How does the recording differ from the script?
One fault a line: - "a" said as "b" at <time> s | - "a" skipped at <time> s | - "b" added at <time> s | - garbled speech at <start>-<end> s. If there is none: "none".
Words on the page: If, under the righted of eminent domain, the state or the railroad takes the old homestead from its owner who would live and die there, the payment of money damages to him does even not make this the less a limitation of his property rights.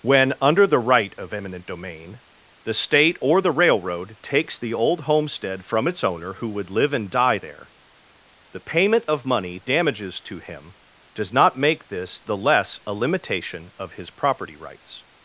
- "If" said as "When" at 0.0 s
- "righted" said as "right" at 0.8 s
- "even" skipped at 11.3 s